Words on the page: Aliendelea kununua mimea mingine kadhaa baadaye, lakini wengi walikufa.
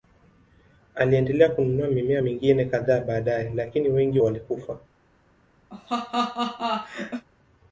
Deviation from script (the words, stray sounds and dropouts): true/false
true